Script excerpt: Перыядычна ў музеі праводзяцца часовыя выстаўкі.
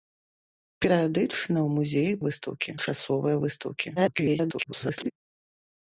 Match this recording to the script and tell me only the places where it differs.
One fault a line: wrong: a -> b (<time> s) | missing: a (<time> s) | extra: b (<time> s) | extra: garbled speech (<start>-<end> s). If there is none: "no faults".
wrong: праводзяцца -> выстаўкі (2.2 s)
extra: garbled speech (4.0-5.1 s)